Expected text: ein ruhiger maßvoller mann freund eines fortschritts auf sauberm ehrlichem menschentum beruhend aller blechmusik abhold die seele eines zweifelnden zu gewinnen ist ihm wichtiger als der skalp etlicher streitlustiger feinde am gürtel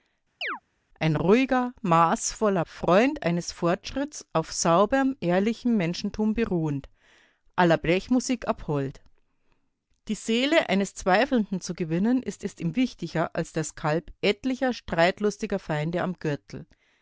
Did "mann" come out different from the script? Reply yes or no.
yes